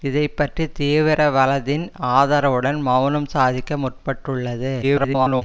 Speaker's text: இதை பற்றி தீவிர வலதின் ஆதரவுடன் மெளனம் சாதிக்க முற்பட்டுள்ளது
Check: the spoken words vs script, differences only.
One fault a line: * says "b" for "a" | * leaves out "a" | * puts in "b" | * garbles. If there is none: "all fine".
* garbles